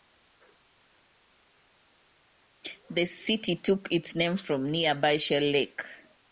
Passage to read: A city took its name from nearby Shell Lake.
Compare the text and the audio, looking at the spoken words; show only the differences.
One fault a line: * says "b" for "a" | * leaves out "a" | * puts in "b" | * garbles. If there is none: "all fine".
* says "The" for "A"